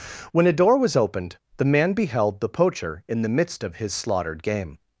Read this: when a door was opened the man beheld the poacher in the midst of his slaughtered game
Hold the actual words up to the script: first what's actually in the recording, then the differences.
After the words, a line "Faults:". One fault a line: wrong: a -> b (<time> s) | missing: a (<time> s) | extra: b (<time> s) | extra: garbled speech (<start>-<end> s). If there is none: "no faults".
when a door was opened the man beheld the poacher in the midst of his slaughtered game
Faults:
no faults